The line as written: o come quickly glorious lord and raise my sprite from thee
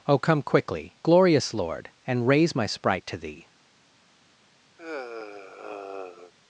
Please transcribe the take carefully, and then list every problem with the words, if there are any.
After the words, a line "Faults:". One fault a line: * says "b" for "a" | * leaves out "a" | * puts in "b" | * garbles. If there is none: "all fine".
o come quickly glorious lord and raise my sprite to thee
Faults:
* says "to" for "from"